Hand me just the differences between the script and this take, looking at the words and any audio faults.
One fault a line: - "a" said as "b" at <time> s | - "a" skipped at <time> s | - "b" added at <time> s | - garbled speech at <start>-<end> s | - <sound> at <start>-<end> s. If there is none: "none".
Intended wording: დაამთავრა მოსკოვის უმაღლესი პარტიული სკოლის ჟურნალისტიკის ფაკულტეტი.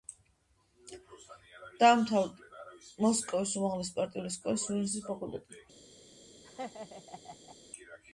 - laugh at 6.4-7.6 s